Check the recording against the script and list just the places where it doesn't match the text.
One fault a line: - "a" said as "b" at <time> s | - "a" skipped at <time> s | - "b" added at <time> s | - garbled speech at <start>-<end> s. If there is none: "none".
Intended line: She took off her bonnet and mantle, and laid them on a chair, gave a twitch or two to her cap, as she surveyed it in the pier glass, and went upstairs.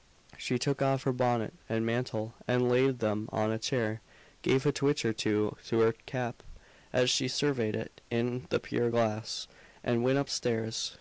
none